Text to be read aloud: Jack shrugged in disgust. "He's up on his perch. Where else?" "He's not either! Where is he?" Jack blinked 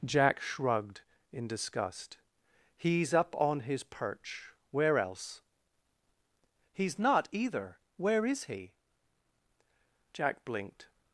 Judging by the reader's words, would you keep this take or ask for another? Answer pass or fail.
pass